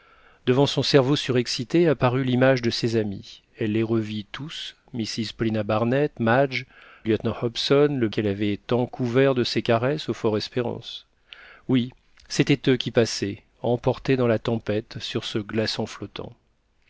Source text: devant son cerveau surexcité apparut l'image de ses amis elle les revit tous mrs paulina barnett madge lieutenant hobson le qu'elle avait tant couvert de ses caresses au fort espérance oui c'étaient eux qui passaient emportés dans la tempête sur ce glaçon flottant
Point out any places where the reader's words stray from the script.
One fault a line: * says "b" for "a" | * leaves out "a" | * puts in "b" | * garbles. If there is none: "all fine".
all fine